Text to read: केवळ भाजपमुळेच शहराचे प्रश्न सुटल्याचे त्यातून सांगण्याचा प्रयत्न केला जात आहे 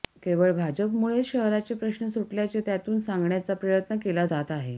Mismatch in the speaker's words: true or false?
false